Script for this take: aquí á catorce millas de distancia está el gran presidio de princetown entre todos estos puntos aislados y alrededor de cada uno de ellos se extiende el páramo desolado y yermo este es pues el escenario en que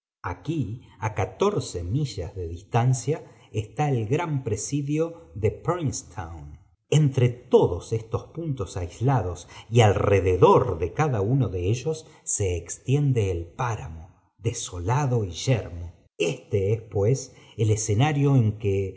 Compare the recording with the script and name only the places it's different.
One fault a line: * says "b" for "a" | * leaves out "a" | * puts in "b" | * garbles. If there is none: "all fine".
all fine